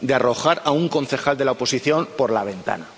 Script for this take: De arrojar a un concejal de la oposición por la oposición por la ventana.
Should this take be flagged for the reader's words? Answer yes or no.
yes